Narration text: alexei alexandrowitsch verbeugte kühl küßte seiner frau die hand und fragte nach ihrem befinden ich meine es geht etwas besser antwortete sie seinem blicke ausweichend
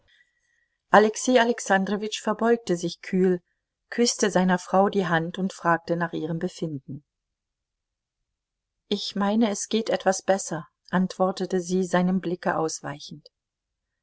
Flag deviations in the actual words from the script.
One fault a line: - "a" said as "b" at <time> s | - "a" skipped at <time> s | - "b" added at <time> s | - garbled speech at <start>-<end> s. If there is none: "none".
- "sich" added at 2.8 s